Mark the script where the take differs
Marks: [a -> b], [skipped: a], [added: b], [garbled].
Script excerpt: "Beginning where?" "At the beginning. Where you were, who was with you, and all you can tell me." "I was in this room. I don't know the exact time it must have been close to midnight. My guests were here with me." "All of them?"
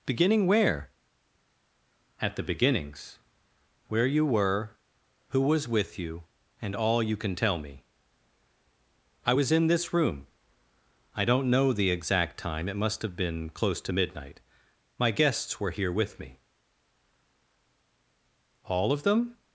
"Beginning where?" "At the [beginning. -> beginnings] Where you were, who was with you, and all you can tell me." "I was in this room. I don't know the exact time it must have been close to midnight. My guests were here with me." "All of them?"